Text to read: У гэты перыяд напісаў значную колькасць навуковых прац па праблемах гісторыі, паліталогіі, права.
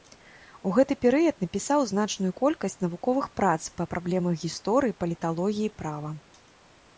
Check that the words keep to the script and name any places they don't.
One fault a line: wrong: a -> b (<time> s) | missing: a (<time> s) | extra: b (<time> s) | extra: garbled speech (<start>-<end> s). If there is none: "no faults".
no faults